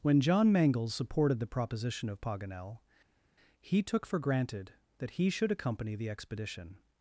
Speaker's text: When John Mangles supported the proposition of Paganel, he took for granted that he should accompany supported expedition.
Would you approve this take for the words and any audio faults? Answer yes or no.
no